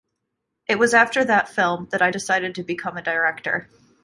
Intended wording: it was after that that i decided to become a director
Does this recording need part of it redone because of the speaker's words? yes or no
yes